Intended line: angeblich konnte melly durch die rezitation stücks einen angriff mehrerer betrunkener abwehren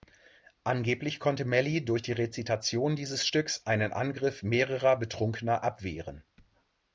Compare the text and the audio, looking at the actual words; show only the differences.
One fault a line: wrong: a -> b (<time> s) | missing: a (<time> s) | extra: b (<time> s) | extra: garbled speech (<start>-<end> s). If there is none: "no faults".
extra: dieses (3.0 s)